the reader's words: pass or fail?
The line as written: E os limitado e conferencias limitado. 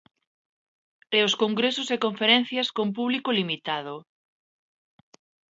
fail